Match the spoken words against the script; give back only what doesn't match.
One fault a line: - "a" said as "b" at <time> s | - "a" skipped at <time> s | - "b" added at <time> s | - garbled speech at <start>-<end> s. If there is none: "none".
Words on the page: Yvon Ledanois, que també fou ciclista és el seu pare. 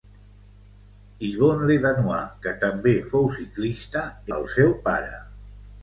- "és" skipped at 4.1 s